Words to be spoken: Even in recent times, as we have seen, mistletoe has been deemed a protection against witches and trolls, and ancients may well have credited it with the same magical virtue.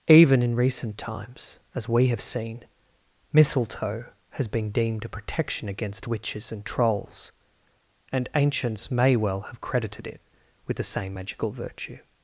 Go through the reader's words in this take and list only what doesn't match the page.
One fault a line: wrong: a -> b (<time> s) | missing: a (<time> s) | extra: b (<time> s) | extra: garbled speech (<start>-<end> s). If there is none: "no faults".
no faults